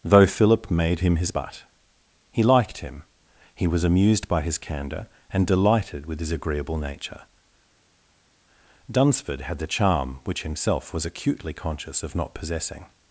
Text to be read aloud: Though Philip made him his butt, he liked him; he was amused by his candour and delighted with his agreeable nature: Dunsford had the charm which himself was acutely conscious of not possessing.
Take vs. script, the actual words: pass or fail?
pass